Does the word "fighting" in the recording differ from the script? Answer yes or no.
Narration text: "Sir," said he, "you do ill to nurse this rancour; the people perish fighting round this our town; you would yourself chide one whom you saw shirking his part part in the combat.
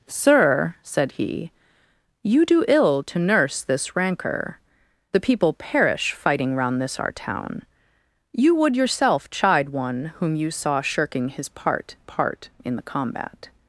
no